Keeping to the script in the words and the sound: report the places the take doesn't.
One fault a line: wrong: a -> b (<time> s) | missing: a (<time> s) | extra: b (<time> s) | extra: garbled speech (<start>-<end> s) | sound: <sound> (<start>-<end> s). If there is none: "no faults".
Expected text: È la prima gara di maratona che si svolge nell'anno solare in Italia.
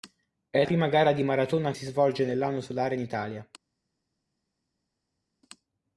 missing: la (0.7 s)
missing: che (1.7 s)